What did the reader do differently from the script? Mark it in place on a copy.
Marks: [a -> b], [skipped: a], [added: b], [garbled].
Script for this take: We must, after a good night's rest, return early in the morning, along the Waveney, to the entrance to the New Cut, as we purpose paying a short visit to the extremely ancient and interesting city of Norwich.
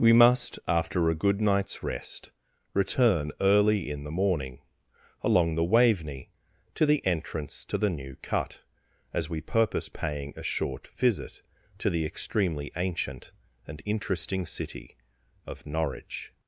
We must, after a good night's rest, return early in the morning, along the Waveney, to the entrance to the New Cut, as we purpose paying a short visit to the extremely ancient and interesting city of Norwich.